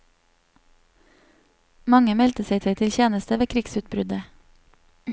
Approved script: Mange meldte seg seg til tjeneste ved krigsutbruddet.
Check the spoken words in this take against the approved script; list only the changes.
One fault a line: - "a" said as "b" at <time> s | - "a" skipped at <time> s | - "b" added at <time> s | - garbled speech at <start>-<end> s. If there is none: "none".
none